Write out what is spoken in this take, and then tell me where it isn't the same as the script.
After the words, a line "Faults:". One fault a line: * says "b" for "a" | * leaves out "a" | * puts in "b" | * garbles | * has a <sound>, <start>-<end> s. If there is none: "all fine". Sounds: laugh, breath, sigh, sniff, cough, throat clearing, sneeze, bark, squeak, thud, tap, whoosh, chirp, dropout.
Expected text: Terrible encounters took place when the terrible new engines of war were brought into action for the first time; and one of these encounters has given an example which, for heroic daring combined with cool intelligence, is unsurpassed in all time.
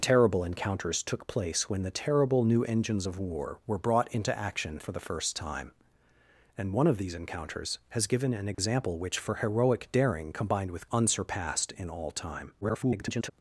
Terrible encounters took place when the terrible new engines of war were brought into action for the first time; and one of these encounters has given an example which, for heroic daring combined with unsurpassed in all time. [garbled]
Faults:
* has a dropout, 8.5-8.6 s
* leaves out "cool intelligence is"
* garbles